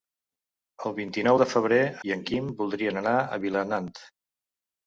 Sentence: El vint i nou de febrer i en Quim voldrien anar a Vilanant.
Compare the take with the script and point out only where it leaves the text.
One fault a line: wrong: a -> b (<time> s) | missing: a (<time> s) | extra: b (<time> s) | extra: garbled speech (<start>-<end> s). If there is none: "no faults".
no faults